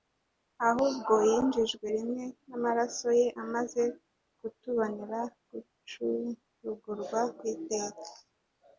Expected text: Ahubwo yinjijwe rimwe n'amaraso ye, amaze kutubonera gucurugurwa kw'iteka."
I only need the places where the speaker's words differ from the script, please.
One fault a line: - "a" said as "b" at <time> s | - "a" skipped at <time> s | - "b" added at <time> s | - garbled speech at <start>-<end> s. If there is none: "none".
none